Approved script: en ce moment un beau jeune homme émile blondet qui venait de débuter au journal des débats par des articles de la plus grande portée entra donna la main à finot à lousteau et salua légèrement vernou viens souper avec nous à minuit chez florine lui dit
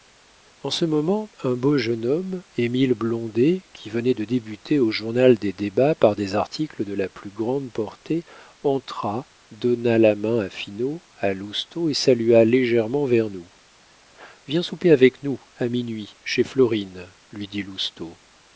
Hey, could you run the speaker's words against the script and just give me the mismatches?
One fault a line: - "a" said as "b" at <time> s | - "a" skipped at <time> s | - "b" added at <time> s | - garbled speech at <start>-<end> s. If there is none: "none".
none